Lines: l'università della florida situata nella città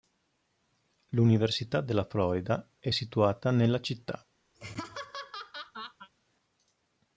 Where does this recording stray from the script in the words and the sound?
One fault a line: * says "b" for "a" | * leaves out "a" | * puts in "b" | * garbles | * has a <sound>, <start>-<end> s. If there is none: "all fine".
* puts in "è"
* has a laugh, 4.5-6.1 s